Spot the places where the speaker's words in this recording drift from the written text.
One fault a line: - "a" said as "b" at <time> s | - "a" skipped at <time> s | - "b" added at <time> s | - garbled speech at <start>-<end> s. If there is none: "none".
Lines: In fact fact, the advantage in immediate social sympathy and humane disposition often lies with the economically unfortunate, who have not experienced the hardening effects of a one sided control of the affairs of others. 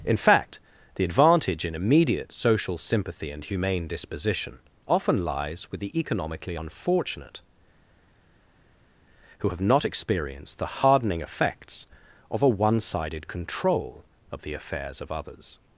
- "fact" skipped at 0.6 s